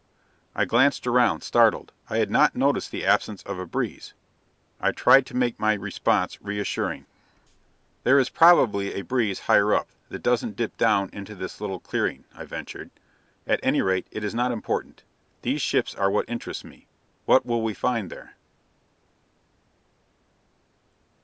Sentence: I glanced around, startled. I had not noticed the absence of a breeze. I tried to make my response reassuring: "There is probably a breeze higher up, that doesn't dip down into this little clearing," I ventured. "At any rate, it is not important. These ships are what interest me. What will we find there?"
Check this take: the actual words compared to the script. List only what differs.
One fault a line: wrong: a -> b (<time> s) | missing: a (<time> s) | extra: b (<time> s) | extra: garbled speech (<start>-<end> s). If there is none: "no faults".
no faults